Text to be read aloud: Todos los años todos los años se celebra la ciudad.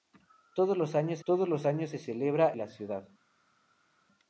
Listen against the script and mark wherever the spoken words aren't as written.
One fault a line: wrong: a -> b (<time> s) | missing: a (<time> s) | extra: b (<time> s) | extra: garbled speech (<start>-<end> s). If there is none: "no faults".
no faults